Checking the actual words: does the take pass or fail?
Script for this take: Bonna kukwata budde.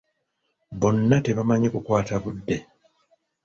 fail